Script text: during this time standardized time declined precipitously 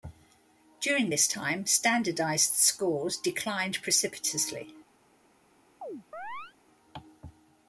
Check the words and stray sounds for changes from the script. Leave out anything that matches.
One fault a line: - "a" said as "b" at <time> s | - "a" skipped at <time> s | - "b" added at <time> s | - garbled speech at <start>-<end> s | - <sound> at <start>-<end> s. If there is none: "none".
- "time" said as "scores" at 2.5 s
- chirp at 5.8-6.5 s